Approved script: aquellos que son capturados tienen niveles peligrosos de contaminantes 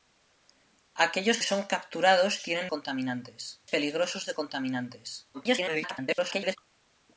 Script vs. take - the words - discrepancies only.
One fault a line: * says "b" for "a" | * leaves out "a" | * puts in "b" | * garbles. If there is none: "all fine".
* leaves out "que"
* says "contaminantes" for "niveles"
* garbles